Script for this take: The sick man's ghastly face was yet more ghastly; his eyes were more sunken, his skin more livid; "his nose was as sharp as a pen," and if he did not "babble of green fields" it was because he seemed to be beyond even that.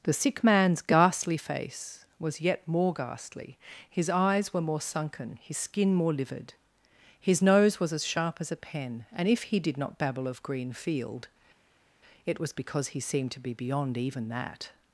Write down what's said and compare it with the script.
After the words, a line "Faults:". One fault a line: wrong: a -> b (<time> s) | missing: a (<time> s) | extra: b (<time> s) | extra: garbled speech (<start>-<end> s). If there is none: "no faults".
The sick man's ghastly face was yet more ghastly; his eyes were more sunken, his skin more livid; "his nose was as sharp as a pen," and if he did not "babble of green field" it was because he seemed to be beyond even that.
Faults:
wrong: fields -> field (10.7 s)